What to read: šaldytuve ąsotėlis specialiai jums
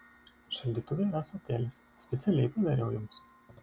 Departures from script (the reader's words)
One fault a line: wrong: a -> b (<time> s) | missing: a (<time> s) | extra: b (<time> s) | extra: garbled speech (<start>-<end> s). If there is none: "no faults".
extra: yra (1.1 s)
extra: padariau (2.6 s)